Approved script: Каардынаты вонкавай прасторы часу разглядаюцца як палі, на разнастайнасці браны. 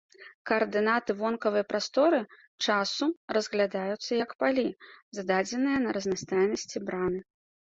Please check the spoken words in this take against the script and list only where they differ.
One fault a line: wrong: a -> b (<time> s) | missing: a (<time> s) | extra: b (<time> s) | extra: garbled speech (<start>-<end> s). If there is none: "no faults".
extra: зададзеныя (5.2 s)